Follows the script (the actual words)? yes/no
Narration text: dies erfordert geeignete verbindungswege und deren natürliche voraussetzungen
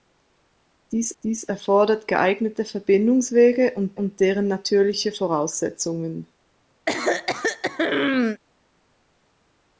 no